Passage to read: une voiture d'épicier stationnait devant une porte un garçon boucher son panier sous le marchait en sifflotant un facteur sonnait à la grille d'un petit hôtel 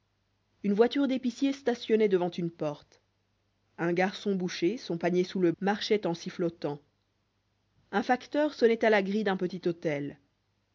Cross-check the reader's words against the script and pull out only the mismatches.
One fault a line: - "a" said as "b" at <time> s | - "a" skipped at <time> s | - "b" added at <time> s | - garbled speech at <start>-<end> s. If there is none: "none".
none